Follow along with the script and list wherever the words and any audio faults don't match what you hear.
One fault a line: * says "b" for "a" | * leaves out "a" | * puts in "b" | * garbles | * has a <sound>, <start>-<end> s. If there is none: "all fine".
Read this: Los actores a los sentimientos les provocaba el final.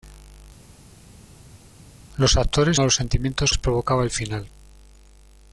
all fine